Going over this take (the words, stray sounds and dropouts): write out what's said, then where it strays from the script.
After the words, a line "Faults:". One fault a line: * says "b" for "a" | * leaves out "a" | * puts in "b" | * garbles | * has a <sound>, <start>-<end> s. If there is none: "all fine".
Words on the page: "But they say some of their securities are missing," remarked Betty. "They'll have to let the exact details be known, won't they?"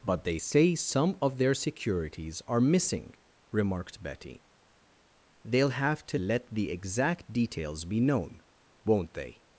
"But they say some of their securities are missing," remarked Betty. "They'll have to let the exact details be known, won't they?"
Faults:
all fine